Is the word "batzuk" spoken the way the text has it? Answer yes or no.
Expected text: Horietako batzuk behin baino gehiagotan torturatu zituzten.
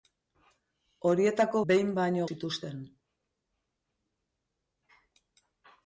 no